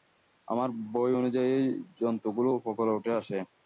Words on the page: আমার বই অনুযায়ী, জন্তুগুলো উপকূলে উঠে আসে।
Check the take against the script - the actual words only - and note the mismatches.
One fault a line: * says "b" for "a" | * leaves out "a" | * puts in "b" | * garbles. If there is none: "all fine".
all fine